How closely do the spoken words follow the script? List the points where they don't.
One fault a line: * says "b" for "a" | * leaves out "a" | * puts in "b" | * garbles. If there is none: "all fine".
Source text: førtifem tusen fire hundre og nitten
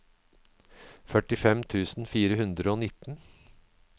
all fine